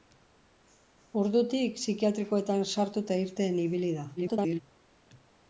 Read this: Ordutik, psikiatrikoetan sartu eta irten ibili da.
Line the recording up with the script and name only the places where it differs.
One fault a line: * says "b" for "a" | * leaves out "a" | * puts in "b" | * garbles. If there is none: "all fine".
* garbles